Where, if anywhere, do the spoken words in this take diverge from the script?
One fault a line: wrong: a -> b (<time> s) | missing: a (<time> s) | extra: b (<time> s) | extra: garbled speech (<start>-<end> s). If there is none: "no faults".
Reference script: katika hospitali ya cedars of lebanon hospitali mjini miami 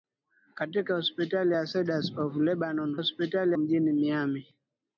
no faults